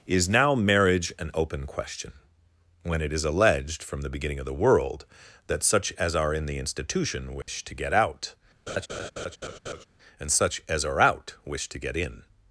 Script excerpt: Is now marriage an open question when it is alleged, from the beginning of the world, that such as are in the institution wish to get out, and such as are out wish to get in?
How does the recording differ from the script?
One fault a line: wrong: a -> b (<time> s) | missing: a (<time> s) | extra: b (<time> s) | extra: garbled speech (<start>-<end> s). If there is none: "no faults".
no faults